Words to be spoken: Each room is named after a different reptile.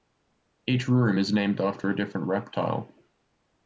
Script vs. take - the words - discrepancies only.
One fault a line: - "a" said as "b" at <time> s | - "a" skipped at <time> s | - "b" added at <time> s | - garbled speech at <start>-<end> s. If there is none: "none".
none